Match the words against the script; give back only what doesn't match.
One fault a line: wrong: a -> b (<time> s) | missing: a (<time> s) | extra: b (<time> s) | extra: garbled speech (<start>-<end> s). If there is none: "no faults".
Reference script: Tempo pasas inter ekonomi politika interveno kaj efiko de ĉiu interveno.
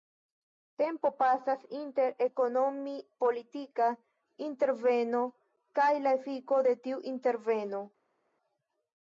extra: la (6.1 s)
wrong: ĉiu -> tiu (6.9 s)